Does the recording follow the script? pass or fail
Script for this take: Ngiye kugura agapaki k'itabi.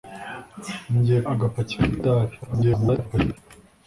fail